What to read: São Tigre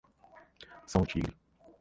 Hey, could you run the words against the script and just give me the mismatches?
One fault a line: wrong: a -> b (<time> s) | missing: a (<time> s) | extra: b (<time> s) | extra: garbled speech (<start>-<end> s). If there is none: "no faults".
no faults